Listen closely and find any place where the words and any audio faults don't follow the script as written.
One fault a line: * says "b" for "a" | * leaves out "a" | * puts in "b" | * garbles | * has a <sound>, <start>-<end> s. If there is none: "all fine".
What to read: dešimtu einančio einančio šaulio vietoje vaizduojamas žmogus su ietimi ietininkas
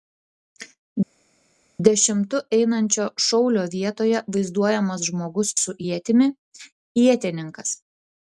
* leaves out "einančio"